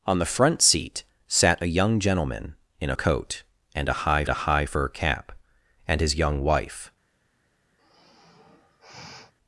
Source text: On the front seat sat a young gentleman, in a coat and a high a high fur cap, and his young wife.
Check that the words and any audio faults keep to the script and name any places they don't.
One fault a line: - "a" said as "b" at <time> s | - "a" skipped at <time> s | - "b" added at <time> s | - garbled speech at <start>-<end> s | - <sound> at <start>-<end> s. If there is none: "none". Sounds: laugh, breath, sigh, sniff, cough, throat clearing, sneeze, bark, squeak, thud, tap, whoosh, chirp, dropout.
- sigh at 7.8-9.3 s